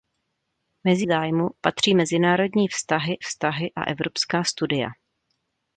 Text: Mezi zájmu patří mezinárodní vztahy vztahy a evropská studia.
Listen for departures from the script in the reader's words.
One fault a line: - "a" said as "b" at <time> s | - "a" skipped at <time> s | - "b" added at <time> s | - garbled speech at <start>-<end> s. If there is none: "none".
none